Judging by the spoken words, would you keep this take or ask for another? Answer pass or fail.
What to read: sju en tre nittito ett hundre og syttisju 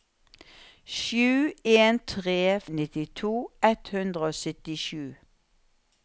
pass